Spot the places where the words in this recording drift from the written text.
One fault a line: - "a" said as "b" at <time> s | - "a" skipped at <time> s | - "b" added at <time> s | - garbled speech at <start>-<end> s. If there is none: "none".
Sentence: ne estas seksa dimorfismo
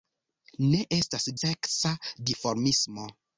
none